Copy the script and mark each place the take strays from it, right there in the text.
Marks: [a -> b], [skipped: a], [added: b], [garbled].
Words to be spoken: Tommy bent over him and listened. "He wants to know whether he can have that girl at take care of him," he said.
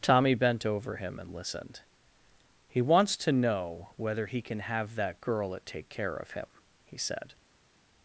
Tommy bent over him and listened. "He wants to know whether he can have that girl at take care of him," he said.